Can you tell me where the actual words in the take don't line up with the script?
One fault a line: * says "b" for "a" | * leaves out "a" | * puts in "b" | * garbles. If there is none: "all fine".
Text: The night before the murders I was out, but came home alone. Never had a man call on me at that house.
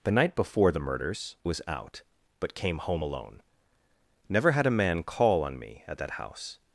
* leaves out "I"